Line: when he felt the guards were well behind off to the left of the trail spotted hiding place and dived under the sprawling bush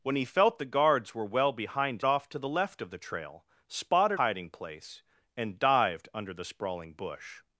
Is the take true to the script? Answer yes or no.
yes